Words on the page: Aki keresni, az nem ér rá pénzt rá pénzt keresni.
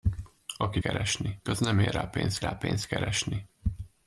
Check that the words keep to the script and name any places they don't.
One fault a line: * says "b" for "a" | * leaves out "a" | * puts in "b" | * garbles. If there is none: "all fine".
all fine